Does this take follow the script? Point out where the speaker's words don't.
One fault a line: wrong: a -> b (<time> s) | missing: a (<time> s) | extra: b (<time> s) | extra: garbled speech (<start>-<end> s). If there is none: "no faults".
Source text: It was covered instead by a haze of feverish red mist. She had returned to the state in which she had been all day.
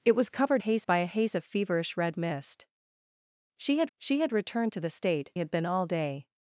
wrong: instead -> haze (0.6 s)
extra: she had (4.0 s)
missing: in which she (5.3 s)